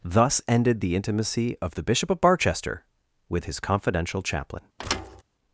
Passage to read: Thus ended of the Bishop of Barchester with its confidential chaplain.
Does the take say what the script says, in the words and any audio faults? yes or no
no